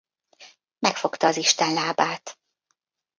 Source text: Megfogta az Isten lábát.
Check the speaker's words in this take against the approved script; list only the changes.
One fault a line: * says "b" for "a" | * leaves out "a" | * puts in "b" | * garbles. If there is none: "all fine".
all fine